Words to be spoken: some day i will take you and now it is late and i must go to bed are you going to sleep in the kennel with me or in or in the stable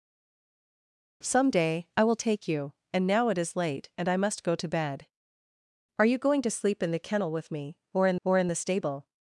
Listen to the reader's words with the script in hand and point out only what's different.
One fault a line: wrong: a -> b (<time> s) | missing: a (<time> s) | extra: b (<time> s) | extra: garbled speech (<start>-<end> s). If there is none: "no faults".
no faults